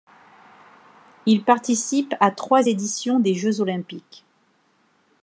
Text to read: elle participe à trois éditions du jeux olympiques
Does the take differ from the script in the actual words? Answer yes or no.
yes